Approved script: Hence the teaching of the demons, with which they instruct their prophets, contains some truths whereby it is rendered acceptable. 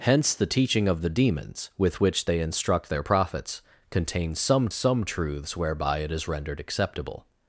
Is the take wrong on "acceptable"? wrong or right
right